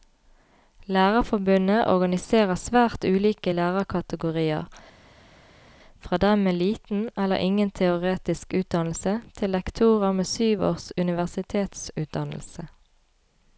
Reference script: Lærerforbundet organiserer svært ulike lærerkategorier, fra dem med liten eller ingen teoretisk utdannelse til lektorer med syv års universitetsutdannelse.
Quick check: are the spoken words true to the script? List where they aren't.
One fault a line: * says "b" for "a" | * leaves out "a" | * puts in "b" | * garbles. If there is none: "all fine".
all fine